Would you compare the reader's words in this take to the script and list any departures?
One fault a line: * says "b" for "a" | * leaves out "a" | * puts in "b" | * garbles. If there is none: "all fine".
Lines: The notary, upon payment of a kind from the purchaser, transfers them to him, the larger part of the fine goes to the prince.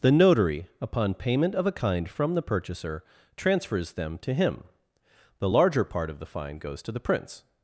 all fine